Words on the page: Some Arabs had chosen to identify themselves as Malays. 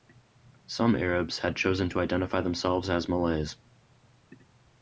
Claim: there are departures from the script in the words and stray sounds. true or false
false